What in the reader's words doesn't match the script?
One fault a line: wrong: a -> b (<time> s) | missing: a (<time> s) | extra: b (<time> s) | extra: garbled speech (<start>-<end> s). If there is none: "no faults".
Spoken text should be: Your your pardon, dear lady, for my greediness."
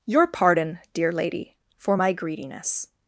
missing: your (0.2 s)